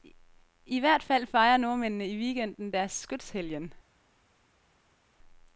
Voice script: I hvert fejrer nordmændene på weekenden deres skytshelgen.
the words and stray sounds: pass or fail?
fail